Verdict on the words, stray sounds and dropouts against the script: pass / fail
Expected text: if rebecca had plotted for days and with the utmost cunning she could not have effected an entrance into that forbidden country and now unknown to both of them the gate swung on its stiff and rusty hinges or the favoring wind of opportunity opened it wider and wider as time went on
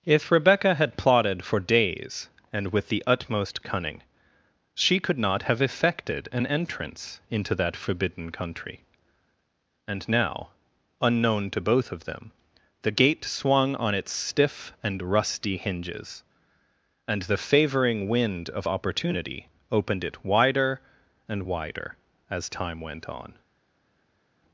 fail